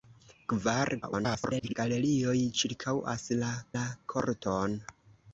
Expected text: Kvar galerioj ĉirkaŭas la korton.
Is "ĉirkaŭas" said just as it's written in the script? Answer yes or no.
yes